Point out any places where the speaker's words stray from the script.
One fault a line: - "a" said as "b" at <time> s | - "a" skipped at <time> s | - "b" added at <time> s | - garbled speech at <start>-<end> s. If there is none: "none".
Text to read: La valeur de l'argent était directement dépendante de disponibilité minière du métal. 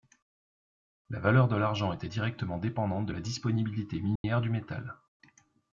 - "la" added at 3.1 s